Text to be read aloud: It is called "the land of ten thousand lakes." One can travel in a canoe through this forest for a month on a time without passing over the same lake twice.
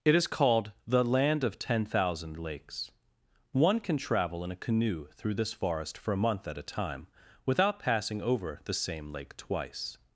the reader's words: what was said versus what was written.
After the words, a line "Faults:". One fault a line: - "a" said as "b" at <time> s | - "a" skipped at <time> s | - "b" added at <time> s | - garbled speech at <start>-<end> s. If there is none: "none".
It is called "the land of ten thousand lakes." One can travel in a canoe through this forest for a month at a time without passing over the same lake twice.
Faults:
- "on" said as "at" at 6.5 s